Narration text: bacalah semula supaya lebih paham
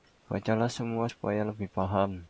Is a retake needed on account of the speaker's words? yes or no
no